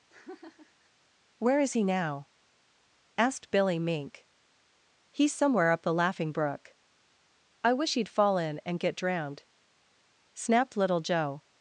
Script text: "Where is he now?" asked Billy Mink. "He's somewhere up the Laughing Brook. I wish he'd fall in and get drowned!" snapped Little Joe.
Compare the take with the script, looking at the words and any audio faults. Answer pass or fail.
fail